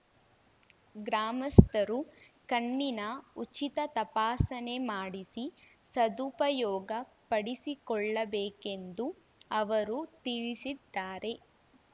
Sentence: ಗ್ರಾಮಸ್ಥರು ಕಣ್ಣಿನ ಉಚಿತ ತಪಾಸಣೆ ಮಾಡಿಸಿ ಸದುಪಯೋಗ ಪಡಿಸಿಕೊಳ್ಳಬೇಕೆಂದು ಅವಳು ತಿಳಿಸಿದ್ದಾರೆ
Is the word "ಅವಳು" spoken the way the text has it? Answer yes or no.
no